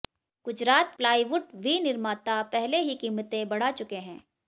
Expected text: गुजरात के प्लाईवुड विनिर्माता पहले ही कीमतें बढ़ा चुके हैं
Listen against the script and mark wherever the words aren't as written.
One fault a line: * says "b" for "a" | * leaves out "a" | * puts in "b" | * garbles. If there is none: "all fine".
* leaves out "के"